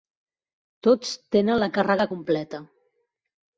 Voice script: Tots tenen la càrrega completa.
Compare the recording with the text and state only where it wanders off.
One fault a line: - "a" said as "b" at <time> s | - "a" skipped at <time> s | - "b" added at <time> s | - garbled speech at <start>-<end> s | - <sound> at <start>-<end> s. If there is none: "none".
none